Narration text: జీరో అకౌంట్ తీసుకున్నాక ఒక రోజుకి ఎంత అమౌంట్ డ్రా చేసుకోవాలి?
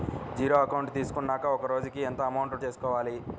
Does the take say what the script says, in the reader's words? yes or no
no